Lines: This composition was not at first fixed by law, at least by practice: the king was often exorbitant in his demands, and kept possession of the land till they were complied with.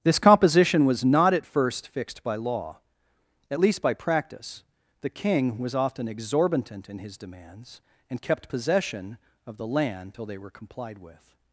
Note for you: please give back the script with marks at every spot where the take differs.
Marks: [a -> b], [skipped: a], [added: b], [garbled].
This composition was not at first fixed by law, at least by practice: the king was often exorbitant in his demands, and kept possession of the land till they were complied with.